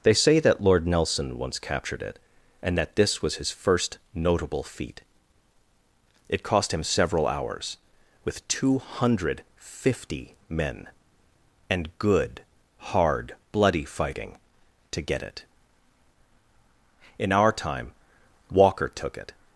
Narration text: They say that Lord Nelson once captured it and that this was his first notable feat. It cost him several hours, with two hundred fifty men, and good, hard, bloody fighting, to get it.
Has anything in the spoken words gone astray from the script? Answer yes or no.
yes